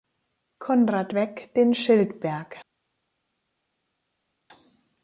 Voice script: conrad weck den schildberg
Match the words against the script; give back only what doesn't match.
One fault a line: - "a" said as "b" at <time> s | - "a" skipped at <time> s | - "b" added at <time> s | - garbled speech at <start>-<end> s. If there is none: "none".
none